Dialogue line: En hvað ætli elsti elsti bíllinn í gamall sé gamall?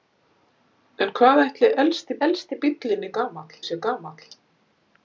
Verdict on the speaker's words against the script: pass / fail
pass